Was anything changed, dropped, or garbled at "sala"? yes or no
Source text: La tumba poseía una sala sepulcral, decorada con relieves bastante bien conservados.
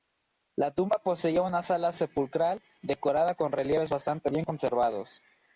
no